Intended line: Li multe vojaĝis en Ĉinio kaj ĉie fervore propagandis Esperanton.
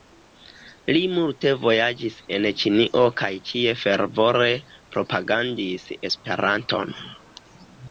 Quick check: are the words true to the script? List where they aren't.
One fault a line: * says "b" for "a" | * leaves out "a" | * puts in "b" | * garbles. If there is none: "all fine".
all fine